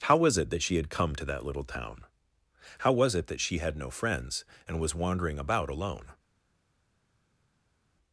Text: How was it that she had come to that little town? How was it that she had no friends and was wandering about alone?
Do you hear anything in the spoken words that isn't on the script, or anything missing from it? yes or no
no